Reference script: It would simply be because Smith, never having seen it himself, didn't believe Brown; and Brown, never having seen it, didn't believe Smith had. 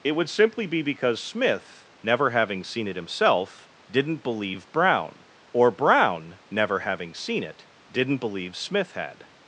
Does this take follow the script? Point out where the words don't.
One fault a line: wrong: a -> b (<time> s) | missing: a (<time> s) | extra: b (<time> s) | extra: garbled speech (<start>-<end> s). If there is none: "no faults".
wrong: and -> or (5.5 s)